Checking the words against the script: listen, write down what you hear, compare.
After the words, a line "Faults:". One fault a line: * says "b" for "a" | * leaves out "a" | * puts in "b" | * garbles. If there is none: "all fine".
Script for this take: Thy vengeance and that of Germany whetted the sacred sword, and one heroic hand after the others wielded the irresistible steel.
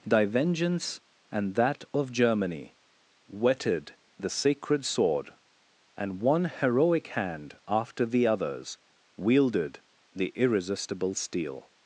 Thy vengeance and that of Germany whetted the sacred sword, and one heroic hand after the others wielded the irresistible steel.
Faults:
all fine